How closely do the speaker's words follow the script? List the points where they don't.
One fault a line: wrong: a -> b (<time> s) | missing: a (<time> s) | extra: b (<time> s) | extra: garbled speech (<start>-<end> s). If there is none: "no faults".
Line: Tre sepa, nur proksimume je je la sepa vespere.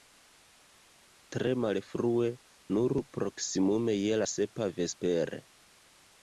wrong: sepa -> malfrue (1.6 s)
missing: je (4.2 s)